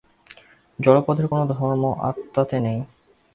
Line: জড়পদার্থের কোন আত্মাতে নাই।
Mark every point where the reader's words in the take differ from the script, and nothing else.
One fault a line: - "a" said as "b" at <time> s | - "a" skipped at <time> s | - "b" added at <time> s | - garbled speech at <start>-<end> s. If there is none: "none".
- "ধর্ম" added at 1.5 s